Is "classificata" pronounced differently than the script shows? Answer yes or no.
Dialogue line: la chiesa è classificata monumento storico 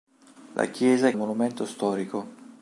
yes